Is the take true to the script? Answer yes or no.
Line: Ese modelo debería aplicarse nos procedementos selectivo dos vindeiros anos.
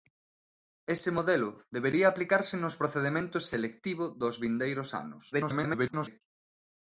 no